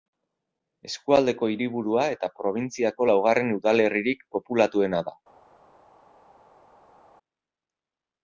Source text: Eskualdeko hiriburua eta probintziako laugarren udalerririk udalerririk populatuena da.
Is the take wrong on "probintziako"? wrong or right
right